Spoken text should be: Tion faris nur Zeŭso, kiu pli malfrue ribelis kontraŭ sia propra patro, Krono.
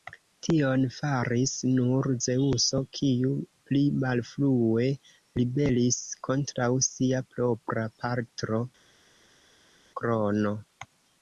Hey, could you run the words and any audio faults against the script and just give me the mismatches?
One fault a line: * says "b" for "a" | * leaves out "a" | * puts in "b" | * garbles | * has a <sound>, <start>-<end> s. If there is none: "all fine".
all fine